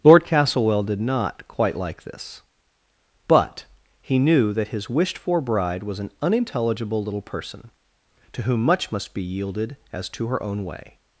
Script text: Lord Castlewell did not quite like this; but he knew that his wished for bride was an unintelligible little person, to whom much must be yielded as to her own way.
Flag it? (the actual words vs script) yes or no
no